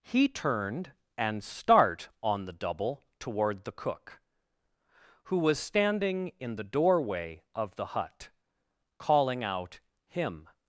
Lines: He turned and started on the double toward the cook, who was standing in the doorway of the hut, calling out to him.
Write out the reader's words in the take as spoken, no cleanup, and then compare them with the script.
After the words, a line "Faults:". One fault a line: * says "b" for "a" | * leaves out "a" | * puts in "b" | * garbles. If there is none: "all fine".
He turned and start on the double toward the cook, who was standing in the doorway of the hut, calling out him.
Faults:
* says "start" for "started"
* leaves out "to"